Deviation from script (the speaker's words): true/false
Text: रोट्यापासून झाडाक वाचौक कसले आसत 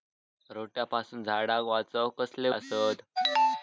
false